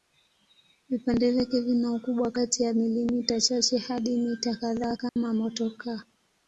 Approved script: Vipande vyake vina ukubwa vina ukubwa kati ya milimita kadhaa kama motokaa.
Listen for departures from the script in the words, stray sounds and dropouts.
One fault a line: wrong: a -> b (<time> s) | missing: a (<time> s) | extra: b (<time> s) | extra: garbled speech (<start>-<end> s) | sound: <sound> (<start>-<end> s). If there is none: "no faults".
missing: vina ukubwa (2.3 s)
extra: chache hadi mita (3.4 s)
sound: dropout (5.1-5.2 s)